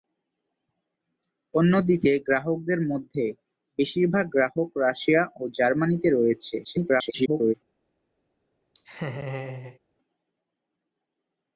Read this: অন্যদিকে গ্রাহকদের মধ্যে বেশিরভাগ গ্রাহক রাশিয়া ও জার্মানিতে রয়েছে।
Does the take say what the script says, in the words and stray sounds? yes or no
no